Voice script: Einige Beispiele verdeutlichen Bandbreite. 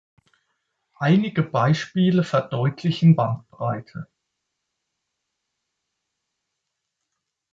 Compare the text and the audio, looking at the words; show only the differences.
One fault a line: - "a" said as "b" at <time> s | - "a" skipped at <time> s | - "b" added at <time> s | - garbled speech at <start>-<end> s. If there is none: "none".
none